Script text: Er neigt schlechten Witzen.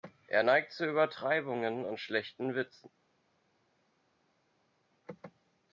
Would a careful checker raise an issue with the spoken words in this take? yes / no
yes